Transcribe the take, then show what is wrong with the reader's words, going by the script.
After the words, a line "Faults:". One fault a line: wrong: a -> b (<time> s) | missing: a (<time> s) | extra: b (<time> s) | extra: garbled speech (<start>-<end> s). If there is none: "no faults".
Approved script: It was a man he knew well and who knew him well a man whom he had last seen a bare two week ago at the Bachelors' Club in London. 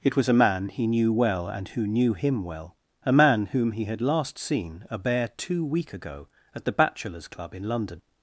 It was a man he knew well and who knew him well a man whom he had last seen a bare two week ago at the Bachelors' Club in London.
Faults:
no faults